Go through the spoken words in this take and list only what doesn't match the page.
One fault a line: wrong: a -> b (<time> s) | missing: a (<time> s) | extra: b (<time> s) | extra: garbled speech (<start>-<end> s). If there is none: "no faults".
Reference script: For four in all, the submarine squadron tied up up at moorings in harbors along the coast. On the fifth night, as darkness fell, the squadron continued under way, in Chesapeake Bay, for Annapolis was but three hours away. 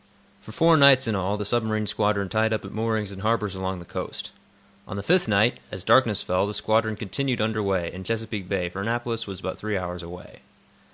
extra: nights (0.8 s)
missing: up (2.6 s)